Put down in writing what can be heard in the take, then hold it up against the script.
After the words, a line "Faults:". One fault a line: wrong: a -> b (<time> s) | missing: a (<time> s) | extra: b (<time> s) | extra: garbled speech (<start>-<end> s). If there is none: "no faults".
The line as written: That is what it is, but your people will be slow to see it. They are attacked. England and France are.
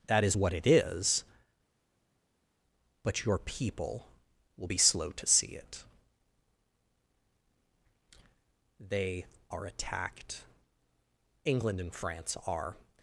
That is what it is, but your people will be slow to see it. They are attacked. England and France are.
Faults:
no faults